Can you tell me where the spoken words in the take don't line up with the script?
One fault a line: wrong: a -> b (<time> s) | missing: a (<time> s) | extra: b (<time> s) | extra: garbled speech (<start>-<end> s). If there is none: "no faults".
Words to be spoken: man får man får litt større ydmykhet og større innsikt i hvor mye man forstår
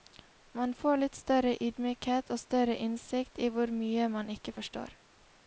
missing: man får (1.0 s)
extra: ikke (4.4 s)